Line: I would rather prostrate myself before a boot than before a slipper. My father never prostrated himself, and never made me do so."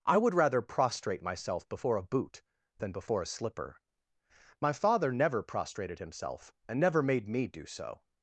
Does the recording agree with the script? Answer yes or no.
yes